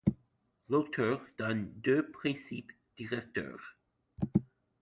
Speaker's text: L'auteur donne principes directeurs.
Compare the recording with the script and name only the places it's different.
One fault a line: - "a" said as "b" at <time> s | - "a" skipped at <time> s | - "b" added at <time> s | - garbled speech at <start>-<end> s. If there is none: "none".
- "deux" added at 1.8 s